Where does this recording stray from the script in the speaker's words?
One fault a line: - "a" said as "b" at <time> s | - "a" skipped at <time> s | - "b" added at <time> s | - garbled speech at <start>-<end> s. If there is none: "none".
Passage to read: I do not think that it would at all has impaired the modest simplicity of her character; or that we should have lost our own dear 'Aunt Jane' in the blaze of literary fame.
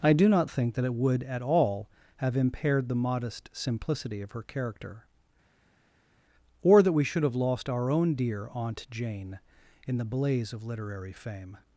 - "has" said as "have" at 2.2 s